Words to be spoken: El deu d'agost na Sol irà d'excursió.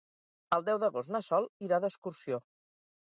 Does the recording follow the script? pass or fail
pass